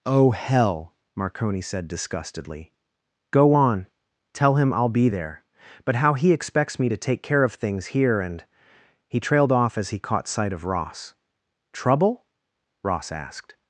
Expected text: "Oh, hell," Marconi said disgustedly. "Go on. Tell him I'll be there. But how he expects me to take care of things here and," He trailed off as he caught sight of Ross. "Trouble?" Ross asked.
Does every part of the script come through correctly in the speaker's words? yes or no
yes